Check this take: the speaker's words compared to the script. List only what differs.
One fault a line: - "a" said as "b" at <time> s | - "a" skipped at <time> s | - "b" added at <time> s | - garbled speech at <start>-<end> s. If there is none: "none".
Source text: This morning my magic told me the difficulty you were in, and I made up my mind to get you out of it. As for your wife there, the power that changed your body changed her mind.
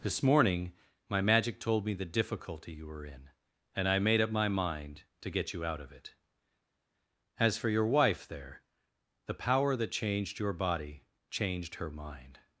none